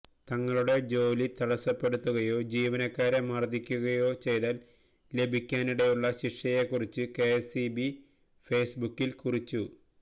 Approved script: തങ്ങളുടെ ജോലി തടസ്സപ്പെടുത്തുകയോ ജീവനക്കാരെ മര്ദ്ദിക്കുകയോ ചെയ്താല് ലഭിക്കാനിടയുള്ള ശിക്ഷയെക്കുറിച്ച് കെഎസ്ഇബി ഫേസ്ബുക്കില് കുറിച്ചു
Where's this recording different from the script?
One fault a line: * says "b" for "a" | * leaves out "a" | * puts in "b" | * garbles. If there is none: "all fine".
all fine